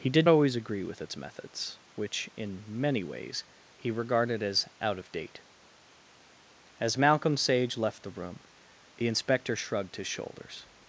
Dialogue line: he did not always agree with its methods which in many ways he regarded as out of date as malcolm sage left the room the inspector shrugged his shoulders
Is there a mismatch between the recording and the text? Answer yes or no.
yes